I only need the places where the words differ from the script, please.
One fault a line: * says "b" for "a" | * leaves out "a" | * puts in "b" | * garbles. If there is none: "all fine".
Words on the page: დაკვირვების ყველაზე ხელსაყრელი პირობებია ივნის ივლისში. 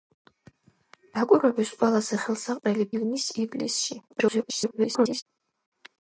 * leaves out "პირობებია"
* garbles